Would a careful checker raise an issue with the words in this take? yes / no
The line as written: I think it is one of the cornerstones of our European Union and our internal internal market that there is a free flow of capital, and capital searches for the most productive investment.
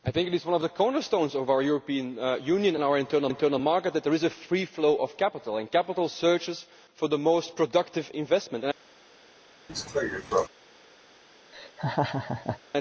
no